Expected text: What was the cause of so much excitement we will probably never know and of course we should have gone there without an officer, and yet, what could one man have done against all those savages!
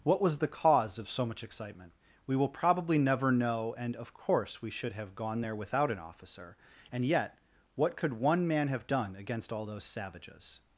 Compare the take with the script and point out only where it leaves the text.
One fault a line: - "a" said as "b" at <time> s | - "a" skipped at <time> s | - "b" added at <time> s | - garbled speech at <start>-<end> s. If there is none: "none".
none